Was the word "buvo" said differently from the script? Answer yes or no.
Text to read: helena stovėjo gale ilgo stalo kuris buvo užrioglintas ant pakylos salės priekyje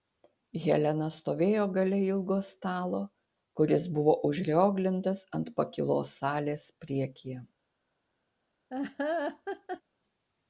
no